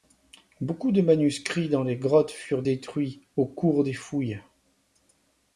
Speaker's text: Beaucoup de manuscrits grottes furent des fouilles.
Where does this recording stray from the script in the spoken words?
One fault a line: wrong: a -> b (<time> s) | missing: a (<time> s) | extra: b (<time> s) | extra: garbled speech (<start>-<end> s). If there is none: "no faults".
extra: dans les (1.7 s)
extra: détruits au cours (2.6 s)